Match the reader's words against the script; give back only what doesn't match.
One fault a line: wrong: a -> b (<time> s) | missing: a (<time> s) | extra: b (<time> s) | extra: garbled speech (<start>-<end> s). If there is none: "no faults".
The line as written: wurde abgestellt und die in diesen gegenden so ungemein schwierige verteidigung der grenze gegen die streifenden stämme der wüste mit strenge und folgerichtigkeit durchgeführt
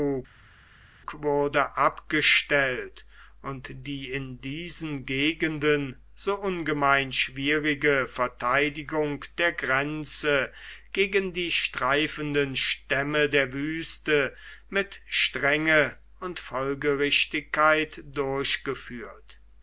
no faults